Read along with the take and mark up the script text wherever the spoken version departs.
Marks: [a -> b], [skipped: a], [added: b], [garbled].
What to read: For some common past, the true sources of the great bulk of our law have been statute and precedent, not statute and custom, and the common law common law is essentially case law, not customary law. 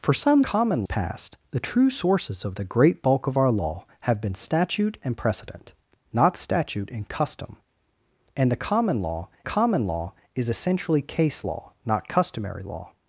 For some common past, the true sources of the great bulk of our law have been statute and precedent, not statute and custom, and the common law common law is essentially case law, not customary law.